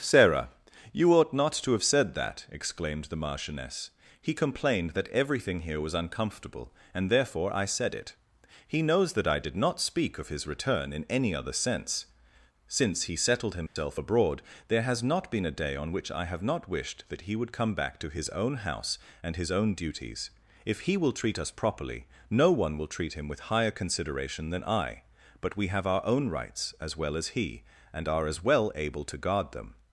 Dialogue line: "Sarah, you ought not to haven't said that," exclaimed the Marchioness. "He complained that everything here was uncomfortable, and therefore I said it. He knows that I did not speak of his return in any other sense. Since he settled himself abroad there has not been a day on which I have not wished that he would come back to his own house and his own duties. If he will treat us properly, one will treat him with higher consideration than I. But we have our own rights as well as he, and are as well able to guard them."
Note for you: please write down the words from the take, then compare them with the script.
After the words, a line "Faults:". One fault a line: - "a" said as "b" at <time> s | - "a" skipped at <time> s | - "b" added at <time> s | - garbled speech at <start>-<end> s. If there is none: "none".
"Sarah, you ought not to have said that," exclaimed the Marchioness. "He complained that everything here was uncomfortable, and therefore I said it. He knows that I did not speak of his return in any other sense. Since he settled himself abroad there has not been a day on which I have not wished that he would come back to his own house and his own duties. If he will treat us properly, no one will treat him with higher consideration than I. But we have our own rights as well as he, and are as well able to guard them."
Faults:
- "haven't" said as "have" at 1.7 s
- "no" added at 22.3 s